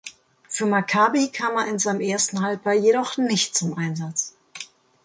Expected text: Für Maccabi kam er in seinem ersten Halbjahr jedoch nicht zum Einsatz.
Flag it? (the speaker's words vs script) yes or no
no